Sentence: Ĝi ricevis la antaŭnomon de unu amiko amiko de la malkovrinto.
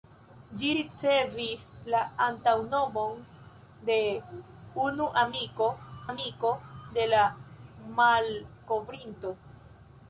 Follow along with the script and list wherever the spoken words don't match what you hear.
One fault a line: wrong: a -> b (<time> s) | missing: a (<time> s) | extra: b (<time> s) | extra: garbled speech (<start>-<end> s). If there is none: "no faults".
no faults